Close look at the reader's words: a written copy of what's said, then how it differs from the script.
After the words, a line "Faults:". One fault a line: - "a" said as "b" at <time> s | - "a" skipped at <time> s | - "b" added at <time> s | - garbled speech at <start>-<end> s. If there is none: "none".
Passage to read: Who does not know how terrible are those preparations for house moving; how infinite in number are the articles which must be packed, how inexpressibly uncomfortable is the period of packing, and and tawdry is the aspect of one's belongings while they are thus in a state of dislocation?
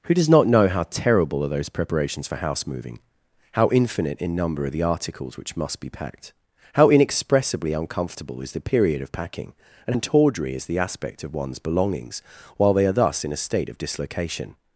Who does not know how terrible are those preparations for house moving; how infinite in number are the articles which must be packed, how inexpressibly uncomfortable is the period of packing, and and tawdry is the aspect of one's belongings while they are thus in a state of dislocation?
Faults:
none